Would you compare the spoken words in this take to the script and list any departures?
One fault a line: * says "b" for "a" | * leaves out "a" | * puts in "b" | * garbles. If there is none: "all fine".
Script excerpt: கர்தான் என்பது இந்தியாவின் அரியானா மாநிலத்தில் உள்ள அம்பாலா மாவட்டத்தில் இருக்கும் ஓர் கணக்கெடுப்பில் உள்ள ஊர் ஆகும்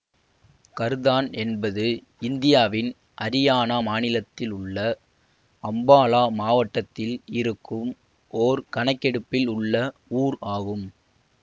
all fine